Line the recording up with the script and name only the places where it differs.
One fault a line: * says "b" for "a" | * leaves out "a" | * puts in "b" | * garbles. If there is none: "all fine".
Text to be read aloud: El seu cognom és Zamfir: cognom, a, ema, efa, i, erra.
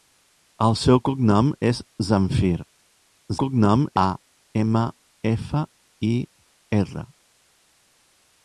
all fine